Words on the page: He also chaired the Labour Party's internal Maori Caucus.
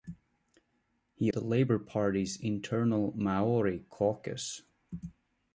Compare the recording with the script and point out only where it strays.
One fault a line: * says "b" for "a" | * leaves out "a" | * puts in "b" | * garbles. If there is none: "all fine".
* leaves out "also chaired"